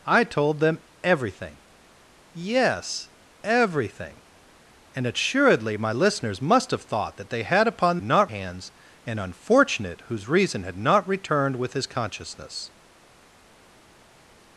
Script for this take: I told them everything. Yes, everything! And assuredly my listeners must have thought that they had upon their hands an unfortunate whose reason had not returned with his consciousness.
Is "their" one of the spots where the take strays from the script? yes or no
yes